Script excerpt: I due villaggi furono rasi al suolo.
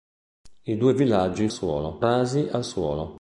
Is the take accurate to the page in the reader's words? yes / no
no